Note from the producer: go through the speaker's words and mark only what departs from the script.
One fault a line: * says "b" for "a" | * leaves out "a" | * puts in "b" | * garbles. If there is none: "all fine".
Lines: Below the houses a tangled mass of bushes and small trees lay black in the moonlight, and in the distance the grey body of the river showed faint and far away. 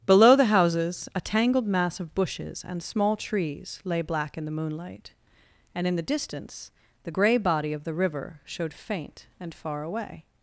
all fine